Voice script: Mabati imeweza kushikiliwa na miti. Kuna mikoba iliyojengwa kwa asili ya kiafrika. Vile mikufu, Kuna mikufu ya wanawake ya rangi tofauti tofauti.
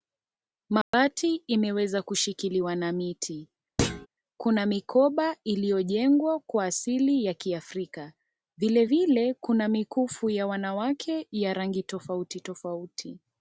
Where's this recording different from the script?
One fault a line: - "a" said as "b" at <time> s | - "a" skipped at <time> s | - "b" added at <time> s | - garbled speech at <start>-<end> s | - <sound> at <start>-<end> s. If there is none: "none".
- dropout at 0.8-0.9 s
- thud at 3.8-4.1 s
- "mikufu" said as "vile" at 8.8 s